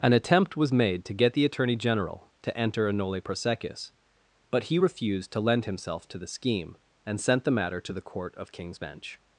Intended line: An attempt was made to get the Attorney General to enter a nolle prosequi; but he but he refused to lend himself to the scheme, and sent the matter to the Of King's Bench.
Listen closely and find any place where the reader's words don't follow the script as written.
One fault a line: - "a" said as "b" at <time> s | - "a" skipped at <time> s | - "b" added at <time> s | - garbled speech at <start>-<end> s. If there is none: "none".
- "but he" skipped at 4.8 s
- "Court" added at 8.0 s